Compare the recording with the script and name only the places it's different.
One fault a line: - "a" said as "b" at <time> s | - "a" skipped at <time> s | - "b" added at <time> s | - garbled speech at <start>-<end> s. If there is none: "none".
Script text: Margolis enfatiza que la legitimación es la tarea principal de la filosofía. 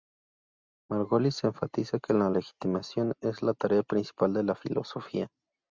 none